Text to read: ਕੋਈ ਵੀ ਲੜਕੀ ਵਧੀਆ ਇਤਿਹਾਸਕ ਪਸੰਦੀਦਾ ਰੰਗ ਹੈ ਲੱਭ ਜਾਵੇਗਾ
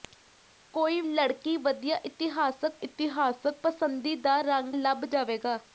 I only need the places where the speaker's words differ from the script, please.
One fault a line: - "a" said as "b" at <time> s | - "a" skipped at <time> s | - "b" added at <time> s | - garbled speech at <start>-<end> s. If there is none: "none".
- "ਵੀ" skipped at 1.0 s
- "ਇਤਿਹਾਸਕ" added at 2.8 s
- "ਹੈ" skipped at 4.8 s